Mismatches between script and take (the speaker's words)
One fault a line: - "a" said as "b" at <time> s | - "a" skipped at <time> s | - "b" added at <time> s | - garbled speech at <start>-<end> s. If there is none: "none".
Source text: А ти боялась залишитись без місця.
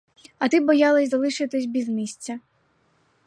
none